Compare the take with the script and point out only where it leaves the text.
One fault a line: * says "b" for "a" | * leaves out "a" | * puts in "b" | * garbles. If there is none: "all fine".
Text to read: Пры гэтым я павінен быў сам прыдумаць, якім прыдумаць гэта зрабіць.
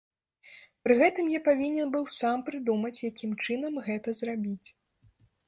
* says "чынам" for "прыдумаць"